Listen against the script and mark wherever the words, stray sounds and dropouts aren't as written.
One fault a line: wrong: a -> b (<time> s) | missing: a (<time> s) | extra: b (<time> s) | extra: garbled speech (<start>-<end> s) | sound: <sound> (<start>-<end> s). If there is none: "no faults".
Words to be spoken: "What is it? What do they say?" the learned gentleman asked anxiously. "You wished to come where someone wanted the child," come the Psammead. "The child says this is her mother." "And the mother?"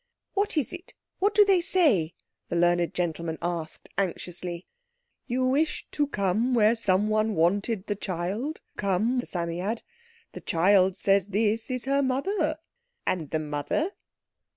no faults